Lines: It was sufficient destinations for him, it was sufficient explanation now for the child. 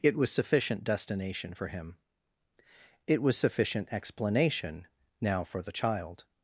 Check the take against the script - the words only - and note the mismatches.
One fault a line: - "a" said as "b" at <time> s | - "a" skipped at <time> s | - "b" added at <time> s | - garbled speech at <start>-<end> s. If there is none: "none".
- "destinations" said as "destination" at 0.8 s